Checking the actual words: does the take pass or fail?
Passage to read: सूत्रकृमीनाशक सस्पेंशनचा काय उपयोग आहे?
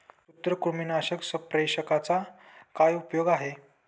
pass